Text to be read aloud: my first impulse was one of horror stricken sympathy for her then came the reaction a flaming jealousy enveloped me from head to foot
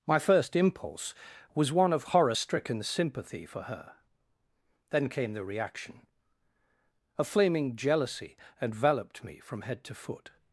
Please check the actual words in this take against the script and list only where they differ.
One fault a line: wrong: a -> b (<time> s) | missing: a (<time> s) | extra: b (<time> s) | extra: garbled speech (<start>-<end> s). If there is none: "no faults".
no faults